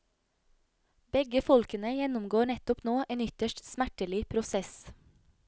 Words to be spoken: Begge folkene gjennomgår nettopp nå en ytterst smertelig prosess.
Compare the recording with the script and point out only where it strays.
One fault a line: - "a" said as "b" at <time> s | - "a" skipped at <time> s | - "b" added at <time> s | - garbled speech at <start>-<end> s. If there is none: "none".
none